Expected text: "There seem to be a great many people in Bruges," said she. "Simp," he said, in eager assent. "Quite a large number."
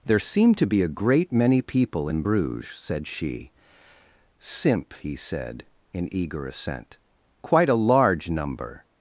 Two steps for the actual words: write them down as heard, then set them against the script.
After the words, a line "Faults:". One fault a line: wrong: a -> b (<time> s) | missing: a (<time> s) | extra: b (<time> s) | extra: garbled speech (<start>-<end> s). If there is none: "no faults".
"There seem to be a great many people in Bruges," said she. "Simp," he said, in eager assent. "Quite a large number."
Faults:
no faults